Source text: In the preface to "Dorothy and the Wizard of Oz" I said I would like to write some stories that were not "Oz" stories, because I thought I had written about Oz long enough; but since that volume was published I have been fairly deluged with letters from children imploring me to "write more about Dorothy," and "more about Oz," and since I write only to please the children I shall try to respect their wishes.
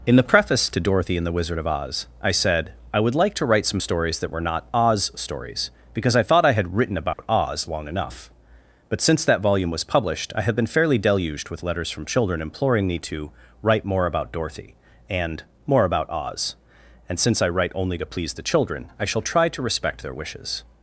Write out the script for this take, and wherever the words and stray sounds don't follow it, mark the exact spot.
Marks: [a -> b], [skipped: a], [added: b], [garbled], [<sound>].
In the preface to "Dorothy and the Wizard of Oz" I said I would like to write some stories that were not "Oz" stories, because I thought I had written about [dropout] Oz long enough; but since that volume was published I have been fairly deluged with letters from children imploring me to "write more about Dorothy," and "more about Oz," and since I write only to please the children I shall try to respect their wishes.